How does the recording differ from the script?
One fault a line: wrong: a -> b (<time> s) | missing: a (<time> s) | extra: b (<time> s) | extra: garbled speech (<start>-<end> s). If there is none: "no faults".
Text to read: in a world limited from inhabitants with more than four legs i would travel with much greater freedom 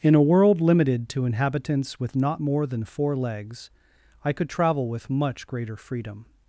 wrong: from -> to (1.1 s)
extra: not (2.1 s)
wrong: would -> could (4.3 s)